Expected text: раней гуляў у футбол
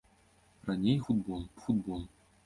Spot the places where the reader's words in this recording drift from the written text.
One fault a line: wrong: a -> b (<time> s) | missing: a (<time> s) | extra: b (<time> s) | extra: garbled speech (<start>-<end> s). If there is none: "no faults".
wrong: гуляў -> футбол (1.1 s)